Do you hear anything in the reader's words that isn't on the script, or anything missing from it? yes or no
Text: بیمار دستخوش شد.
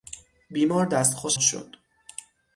no